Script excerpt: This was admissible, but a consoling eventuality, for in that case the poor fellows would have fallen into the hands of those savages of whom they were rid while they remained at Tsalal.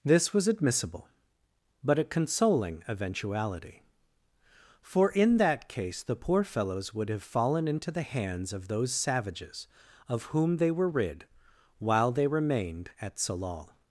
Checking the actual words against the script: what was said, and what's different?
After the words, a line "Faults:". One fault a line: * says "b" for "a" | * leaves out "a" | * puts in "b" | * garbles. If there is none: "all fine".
This was admissible, but a consoling eventuality, for in that case the poor fellows would have fallen into the hands of those savages of whom they were rid while they remained at Tsalal.
Faults:
all fine